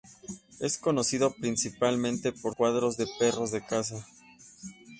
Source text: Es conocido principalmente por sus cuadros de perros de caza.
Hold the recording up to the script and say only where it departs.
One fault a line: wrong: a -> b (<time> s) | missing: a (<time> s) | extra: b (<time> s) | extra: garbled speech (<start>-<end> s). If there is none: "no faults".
missing: sus (2.5 s)